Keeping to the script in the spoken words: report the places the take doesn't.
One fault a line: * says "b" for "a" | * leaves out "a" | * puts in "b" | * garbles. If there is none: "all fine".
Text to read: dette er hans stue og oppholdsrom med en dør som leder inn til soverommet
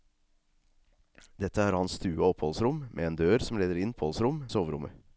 * says "oppholdsrom" for "til"